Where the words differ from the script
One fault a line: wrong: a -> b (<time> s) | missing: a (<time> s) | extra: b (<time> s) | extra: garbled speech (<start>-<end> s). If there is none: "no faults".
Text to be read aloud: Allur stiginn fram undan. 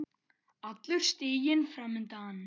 no faults